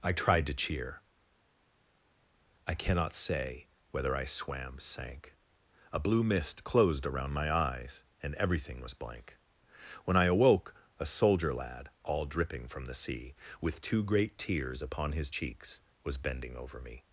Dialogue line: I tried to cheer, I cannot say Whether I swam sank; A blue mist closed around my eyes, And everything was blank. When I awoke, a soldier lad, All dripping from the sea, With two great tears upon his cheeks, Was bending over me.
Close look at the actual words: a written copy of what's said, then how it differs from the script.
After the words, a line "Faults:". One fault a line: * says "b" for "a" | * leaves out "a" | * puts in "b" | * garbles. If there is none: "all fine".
I tried to cheer, I cannot say Whether I swam sank; A blue mist closed around my eyes, And everything was blank. When I awoke, a soldier lad, All dripping from the sea, With two great tears upon his cheeks, Was bending over me.
Faults:
all fine